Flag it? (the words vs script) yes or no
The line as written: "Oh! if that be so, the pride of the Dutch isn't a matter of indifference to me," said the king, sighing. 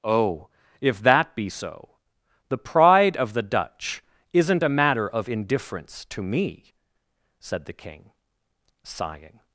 no